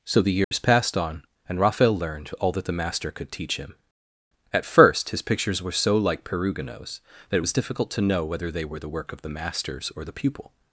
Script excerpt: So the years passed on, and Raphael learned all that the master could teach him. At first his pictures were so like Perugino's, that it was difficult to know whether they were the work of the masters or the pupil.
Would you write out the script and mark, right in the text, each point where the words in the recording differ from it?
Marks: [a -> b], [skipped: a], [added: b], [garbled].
So the years passed on, and Raphael learned all that the master could teach him. At first his pictures were so like Perugino's, that it was difficult to know whether they were the work of the masters or the pupil.